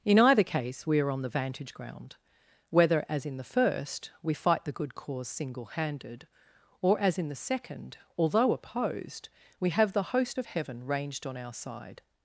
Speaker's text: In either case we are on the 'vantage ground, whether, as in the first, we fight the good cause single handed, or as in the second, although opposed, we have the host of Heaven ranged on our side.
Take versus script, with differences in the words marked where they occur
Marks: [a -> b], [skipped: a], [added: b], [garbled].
In either case we are on the 'vantage ground, whether, as in the first, we fight the good cause single handed, or as in the second, although opposed, we have the host of Heaven ranged on our side.